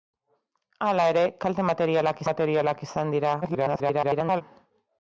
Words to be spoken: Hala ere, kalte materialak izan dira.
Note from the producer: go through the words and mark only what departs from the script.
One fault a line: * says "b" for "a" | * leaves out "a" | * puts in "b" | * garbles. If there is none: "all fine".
* puts in "materialak"
* garbles